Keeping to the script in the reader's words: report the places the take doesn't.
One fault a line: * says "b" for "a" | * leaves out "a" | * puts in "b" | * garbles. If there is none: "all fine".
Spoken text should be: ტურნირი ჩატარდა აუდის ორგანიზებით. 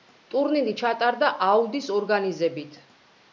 all fine